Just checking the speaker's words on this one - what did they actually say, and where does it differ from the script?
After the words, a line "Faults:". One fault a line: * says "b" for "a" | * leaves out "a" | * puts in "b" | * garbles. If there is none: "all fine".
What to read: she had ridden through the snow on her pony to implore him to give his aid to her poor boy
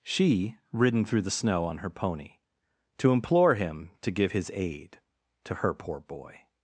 she ridden through the snow on her pony to implore him to give his aid to her poor boy
Faults:
* leaves out "had"